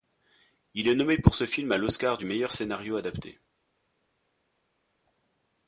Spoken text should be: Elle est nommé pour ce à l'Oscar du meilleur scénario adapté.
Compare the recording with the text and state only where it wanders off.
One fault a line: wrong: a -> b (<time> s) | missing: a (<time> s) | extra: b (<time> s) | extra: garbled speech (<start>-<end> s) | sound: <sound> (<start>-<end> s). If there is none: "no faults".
wrong: Elle -> Il (0.7 s)
extra: film (1.4 s)